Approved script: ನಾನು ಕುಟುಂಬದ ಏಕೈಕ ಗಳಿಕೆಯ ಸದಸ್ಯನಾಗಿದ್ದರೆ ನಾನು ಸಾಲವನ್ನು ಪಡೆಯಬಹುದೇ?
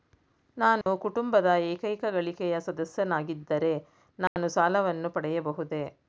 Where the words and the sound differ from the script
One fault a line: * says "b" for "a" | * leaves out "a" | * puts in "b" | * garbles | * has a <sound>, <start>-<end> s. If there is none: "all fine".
* has a dropout, 0.8-0.9 s
* has a dropout, 4.3-4.4 s